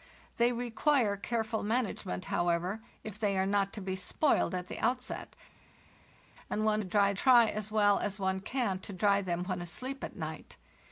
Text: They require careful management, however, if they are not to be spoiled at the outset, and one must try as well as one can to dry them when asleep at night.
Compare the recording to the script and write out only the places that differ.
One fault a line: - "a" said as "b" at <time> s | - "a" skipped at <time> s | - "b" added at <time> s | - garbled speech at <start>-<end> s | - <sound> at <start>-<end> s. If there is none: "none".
- "must" said as "dry" at 6.8 s